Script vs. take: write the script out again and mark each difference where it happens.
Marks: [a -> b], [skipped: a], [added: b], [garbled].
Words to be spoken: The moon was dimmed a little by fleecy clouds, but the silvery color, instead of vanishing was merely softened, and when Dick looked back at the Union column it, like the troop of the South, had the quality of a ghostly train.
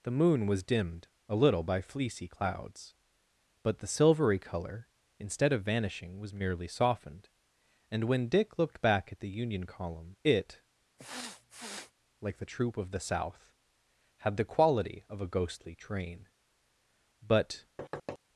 The moon was dimmed a little by fleecy clouds, but the silvery color, instead of vanishing was merely softened, and when Dick looked back at the Union column it, like the troop of the South, had the quality of a ghostly train. [added: But]